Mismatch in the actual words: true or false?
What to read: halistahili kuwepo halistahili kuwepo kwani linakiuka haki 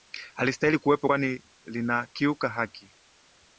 true